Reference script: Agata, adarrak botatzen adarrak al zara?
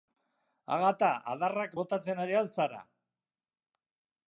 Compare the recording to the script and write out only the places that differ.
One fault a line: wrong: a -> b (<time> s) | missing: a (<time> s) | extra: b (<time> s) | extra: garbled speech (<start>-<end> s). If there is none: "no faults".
wrong: adarrak -> ari (2.3 s)